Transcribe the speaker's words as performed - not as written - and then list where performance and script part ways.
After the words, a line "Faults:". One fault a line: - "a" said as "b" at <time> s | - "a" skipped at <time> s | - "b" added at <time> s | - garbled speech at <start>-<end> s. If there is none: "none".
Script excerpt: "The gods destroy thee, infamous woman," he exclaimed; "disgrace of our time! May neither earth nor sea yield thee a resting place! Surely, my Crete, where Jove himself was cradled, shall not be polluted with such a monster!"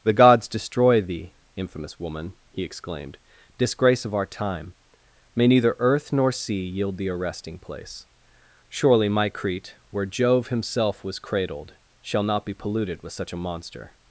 "The gods destroy thee, infamous woman," he exclaimed; "disgrace of our time! May neither earth nor sea yield thee a resting place! Surely, my Crete, where Jove himself was cradled, shall not be polluted with such a monster!"
Faults:
none